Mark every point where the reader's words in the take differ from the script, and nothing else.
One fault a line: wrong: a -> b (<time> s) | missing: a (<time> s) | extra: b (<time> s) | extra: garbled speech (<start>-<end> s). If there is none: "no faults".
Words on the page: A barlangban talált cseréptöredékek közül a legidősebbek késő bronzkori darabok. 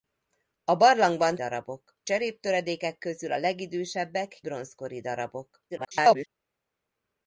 wrong: talált -> darabok (1.3 s)
missing: késő (4.4 s)
extra: garbled speech (5.7-6.3 s)